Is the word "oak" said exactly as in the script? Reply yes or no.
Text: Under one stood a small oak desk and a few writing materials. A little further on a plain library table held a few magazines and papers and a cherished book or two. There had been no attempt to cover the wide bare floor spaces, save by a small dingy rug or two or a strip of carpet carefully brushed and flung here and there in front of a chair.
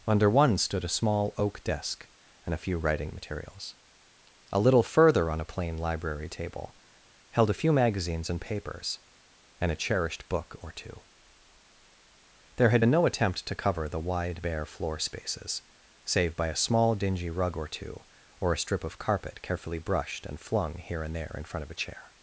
yes